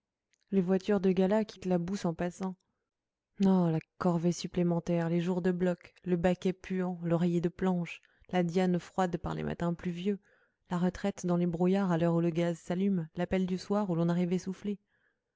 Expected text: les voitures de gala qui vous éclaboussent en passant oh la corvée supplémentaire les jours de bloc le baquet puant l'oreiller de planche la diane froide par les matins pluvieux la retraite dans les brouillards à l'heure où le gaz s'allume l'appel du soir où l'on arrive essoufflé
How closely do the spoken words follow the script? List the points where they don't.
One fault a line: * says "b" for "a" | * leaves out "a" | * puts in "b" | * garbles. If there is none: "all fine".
* leaves out "vous"